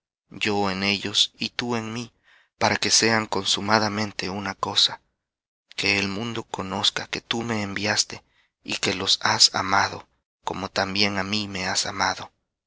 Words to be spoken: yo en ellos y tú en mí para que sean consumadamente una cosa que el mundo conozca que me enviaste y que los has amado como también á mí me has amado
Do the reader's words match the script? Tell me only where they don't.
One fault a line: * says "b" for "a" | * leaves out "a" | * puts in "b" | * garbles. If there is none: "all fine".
* puts in "tú"